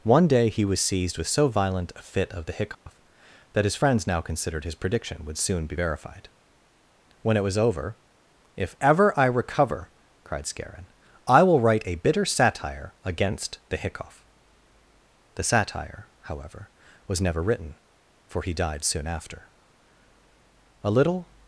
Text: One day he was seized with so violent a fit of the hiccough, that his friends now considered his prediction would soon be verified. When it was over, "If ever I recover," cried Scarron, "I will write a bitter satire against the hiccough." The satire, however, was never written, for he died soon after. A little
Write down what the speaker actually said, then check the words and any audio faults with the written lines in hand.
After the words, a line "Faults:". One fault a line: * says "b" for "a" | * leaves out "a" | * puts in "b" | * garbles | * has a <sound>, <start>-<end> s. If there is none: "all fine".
One day he was seized with so violent a fit of the hiccough, that his friends now considered his prediction would soon be verified. When it was over, "If ever I recover," cried Scarron, "I will write a bitter satire against the hiccough." The satire, however, was never written, for he died soon after. A little
Faults:
* has a dropout, 2.7-2.9 s